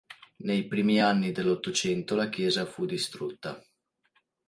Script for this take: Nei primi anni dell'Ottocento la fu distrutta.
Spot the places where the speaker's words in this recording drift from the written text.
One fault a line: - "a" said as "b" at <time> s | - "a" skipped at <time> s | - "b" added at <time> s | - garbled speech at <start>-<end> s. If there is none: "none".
- "chiesa" added at 2.3 s